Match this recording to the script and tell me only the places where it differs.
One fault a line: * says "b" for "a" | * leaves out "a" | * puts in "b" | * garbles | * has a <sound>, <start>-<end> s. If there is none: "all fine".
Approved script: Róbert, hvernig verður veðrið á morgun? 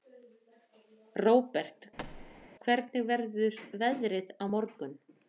* has a thud, 2.0-2.5 s